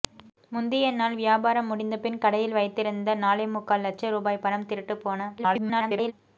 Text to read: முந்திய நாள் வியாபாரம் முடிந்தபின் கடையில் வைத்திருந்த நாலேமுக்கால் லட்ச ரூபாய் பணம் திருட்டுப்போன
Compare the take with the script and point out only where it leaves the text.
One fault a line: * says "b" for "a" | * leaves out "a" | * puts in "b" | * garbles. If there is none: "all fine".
* garbles